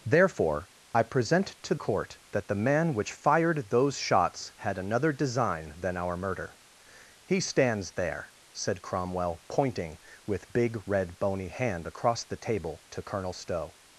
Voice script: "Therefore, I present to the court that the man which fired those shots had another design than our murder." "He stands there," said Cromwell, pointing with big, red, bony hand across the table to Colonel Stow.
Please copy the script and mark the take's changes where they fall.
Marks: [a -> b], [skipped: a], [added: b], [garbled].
"Therefore, I present to [skipped: the] court that the man which fired those shots had another design than our murder." "He stands there," said Cromwell, pointing with big, red, bony hand across the table to Colonel Stow.